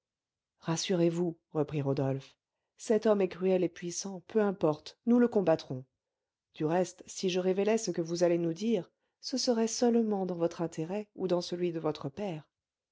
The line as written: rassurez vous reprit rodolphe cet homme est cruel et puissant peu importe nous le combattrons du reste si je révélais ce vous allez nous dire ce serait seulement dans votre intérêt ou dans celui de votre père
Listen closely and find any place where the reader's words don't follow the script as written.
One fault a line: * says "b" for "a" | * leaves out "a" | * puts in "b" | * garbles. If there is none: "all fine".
* puts in "que"